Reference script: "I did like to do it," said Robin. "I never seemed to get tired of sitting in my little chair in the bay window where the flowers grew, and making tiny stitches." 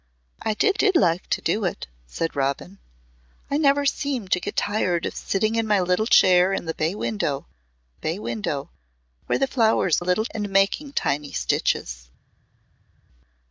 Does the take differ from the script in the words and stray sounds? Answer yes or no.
yes